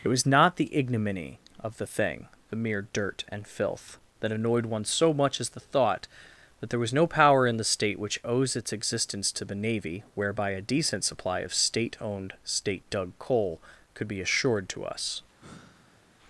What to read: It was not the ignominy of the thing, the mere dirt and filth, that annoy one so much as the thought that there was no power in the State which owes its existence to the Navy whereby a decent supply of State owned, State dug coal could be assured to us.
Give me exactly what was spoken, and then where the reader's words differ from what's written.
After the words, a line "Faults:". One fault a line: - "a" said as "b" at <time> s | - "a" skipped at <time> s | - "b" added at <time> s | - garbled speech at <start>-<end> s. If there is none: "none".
It was not the ignominy of the thing, the mere dirt and filth, that annoyed one so much as the thought that there was no power in the State which owes its existence to the Navy whereby a decent supply of State owned, State dug coal could be assured to us.
Faults:
- "annoy" said as "annoyed" at 4.3 s